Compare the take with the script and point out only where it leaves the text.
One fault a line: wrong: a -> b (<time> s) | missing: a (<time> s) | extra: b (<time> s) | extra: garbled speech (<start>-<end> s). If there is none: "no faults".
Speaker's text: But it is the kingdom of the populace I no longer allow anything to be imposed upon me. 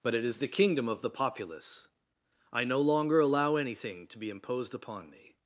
no faults